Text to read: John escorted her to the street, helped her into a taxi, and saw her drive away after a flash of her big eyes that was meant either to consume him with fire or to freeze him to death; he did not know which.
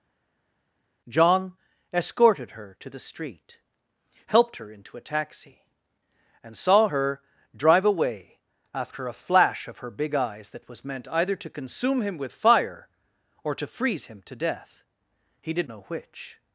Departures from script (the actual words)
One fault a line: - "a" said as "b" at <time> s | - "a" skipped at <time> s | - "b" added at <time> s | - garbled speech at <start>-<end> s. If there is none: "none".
- "not" skipped at 15.7 s